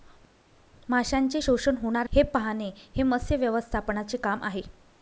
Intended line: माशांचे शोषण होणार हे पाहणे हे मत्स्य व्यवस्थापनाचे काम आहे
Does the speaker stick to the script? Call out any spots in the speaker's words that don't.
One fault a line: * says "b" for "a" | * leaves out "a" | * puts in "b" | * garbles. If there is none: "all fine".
all fine